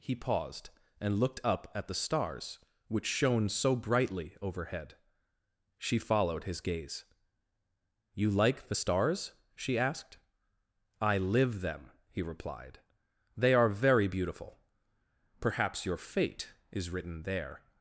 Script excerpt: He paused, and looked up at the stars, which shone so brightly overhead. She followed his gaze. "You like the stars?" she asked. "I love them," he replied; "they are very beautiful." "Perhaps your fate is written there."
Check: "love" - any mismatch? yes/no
yes